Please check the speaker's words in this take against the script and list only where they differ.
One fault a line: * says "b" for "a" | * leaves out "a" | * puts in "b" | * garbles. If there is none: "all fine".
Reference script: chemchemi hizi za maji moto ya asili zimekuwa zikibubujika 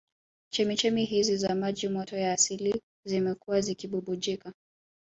all fine